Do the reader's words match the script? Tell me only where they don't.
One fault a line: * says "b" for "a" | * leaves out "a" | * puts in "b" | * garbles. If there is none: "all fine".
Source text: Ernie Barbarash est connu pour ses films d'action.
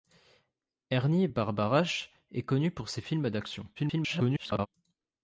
* garbles